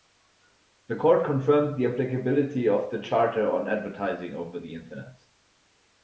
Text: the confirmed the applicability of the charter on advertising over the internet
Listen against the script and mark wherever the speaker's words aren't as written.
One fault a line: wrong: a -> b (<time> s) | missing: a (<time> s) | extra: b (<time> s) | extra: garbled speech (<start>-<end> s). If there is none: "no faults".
extra: court (0.9 s)